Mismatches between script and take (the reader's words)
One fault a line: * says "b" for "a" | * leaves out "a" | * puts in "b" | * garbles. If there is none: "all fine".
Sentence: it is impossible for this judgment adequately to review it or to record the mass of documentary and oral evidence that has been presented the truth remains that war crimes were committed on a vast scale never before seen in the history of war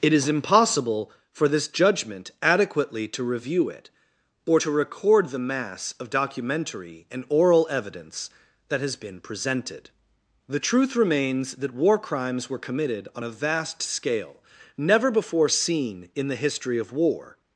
all fine